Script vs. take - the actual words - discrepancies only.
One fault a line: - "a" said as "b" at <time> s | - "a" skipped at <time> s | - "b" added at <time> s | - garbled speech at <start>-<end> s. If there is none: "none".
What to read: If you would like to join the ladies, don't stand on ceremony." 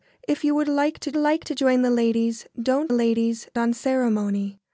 - "like to" added at 1.1 s
- "stand" said as "ladies" at 2.9 s